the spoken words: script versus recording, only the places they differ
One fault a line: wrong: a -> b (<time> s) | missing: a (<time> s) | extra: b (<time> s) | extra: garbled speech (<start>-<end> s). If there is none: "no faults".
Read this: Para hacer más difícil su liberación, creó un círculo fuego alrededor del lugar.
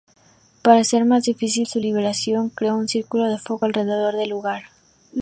extra: de (3.3 s)